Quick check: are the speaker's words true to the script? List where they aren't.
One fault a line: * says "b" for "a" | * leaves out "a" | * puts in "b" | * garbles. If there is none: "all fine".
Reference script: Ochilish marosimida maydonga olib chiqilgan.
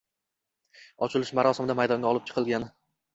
all fine